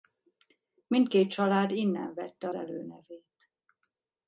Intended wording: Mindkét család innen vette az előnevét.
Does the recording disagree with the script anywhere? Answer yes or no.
yes